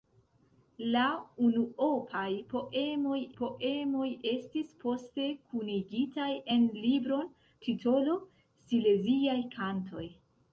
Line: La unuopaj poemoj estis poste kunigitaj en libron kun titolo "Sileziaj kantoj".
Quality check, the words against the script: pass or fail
fail